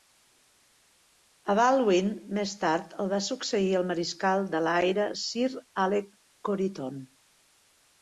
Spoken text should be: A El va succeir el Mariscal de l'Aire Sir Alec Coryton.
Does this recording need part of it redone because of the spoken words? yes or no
yes